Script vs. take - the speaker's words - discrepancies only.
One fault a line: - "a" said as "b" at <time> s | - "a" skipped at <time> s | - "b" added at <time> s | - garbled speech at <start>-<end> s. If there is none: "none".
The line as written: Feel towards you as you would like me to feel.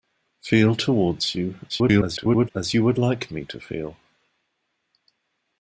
- garbled speech at 1.7-2.5 s